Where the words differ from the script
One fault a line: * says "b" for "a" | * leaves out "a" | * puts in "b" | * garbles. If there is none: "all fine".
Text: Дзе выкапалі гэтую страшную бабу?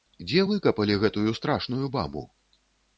all fine